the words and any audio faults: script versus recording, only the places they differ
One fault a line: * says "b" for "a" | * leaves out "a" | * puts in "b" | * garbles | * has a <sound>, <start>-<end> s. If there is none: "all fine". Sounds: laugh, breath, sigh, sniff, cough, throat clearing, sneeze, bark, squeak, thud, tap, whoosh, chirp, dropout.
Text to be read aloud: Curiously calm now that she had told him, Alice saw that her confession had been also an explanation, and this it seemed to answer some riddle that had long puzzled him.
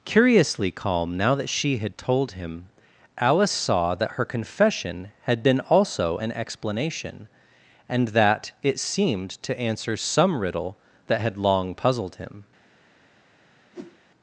* says "that" for "this"
* has a whoosh, 13.7-14.0 s